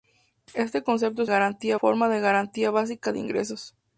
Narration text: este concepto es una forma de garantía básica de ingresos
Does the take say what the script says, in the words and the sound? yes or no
no